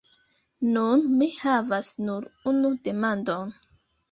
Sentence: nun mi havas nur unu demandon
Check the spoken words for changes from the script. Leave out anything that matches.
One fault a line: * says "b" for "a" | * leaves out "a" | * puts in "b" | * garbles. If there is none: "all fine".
all fine